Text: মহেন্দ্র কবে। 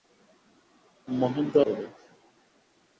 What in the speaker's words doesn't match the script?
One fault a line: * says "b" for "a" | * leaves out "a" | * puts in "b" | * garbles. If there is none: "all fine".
all fine